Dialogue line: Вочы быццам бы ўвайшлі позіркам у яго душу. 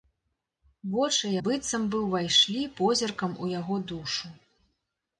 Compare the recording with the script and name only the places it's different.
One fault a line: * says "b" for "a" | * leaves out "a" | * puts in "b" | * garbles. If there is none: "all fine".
all fine